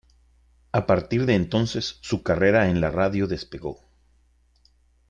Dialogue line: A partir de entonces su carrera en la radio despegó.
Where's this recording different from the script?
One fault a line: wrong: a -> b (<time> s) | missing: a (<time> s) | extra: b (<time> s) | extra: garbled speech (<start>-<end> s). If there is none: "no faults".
no faults